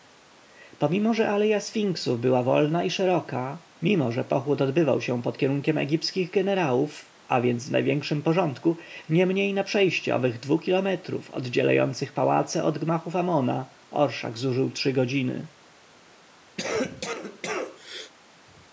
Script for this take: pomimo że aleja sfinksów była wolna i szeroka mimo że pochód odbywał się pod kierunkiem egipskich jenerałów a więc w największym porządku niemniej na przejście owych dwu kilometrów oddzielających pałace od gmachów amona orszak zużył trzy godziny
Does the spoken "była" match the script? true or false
true